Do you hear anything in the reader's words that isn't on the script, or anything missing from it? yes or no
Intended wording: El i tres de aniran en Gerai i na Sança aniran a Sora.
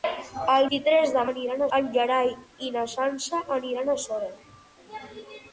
no